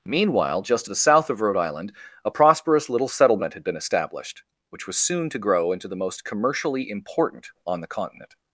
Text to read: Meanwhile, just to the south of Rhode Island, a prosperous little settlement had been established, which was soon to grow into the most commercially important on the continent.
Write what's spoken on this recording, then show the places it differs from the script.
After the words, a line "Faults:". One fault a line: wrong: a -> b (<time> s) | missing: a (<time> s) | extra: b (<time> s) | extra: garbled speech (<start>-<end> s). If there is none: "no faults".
Meanwhile, just to the south of Rhode Island, a prosperous little settlement had been established, which was soon to grow into the most commercially important on the continent.
Faults:
no faults